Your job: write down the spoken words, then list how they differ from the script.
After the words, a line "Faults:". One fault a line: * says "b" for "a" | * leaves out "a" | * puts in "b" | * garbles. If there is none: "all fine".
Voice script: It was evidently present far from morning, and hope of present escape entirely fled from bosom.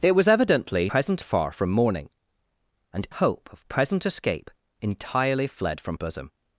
It was evidently present far from morning, and hope of present escape entirely fled from bosom.
Faults:
all fine